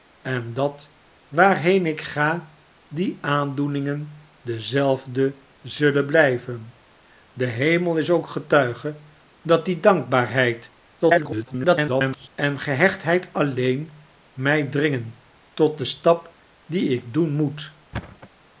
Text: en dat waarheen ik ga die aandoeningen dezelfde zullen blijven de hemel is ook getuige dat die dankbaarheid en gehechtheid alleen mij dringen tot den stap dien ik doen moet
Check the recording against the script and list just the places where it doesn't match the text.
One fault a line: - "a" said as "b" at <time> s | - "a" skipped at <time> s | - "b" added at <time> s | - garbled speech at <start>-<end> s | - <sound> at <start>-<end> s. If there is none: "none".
- garbled speech at 11.0-12.3 s
- thud at 17.9-18.3 s